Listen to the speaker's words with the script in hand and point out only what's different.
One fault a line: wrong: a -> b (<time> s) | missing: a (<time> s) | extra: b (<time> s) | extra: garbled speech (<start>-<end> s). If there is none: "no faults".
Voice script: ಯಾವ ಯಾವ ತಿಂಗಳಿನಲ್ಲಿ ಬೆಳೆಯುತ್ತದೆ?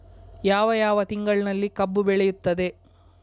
extra: ಕಬ್ಬು (1.7 s)